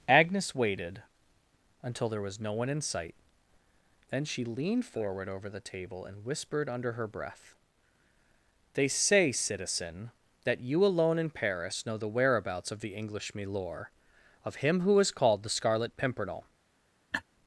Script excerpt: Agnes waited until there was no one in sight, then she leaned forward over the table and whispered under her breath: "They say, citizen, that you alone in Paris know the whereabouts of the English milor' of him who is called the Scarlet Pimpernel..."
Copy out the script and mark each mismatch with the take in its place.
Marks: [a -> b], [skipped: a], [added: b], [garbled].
Agnes waited until there was no one in sight, then she leaned forward over the table and whispered under her breath: "They say, citizen, that you alone in Paris know the whereabouts of the English milor' of him who is called the Scarlet Pimpernel..."